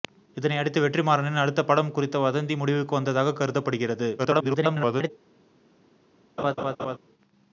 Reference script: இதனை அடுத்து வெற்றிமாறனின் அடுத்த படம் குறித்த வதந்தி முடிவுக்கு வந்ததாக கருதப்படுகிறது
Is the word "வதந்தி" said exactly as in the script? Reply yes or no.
yes